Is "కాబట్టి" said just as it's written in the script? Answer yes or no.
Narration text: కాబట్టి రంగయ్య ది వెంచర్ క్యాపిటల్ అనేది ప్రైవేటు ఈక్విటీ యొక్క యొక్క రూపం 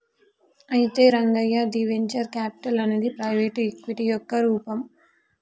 no